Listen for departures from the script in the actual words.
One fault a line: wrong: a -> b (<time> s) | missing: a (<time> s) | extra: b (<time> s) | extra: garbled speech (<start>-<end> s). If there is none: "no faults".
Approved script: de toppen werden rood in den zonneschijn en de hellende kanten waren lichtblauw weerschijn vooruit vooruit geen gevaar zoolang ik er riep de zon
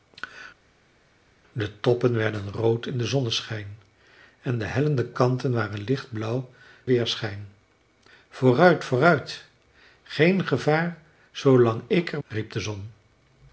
no faults